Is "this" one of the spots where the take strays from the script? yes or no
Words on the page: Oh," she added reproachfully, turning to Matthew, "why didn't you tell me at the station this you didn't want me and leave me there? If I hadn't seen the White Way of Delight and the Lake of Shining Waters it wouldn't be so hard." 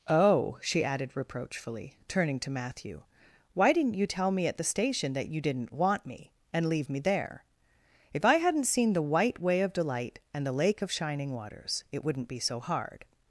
yes